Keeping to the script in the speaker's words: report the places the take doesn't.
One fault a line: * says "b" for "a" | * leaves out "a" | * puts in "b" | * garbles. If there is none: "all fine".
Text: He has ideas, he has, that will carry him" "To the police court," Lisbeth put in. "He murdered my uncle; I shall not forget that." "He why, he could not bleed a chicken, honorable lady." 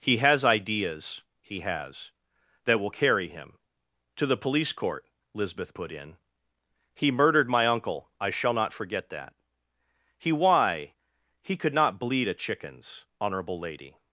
* says "chickens" for "chicken"